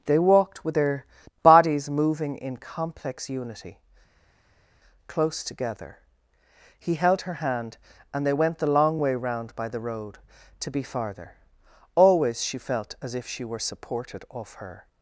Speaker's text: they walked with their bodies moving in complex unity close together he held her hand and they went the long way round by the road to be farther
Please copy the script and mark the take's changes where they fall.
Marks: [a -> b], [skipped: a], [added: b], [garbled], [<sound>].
they walked with their bodies moving in complex unity close together he held her hand and they went the long way round by the road to be farther [added: always she felt as if she were supported off her]